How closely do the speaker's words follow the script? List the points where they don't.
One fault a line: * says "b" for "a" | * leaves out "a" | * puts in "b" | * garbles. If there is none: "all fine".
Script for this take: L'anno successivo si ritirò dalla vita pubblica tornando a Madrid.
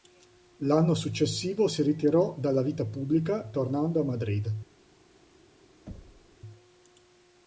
all fine